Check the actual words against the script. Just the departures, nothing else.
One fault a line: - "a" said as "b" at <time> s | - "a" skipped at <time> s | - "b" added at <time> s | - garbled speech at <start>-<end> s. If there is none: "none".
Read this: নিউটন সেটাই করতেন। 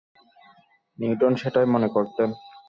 - "মনে" added at 1.7 s